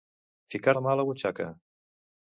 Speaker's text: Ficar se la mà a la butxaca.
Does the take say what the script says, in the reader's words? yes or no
no